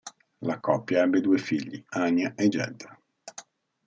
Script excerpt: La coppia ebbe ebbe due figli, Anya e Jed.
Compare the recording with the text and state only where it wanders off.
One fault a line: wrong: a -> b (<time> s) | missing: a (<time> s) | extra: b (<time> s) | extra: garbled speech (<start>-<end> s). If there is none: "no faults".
missing: ebbe (1.2 s)